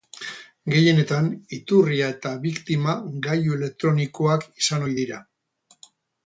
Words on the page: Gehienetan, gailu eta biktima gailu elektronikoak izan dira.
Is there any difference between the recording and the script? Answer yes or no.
yes